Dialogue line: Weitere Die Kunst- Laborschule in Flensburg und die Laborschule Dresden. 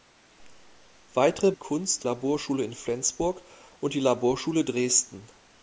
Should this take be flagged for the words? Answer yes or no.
no